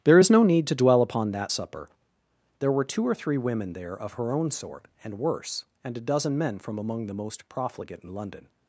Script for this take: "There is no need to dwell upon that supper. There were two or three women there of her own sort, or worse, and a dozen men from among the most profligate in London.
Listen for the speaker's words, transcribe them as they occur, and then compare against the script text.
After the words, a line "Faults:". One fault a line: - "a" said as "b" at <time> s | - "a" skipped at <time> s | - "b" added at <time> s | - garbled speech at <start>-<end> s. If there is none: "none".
"There is no need to dwell upon that supper. There were two or three women there of her own sort, and worse, and a dozen men from among the most profligate in London.
Faults:
- "or" said as "and" at 5.0 s